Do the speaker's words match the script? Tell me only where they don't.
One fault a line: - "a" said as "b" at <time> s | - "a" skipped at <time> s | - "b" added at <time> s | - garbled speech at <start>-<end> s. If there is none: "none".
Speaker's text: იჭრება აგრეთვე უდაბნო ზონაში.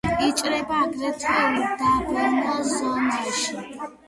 none